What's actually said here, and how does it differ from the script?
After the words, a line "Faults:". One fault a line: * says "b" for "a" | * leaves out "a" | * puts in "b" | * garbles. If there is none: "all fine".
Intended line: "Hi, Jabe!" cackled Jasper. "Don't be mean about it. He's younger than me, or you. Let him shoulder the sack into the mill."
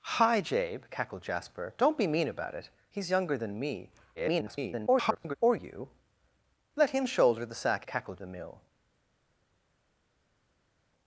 "Hi, Jabe!" cackled Jasper. "Don't be mean about it. He's younger than me, [garbled] or you. Let him shoulder the sack cackled the mill."
Faults:
* garbles
* says "cackled" for "into"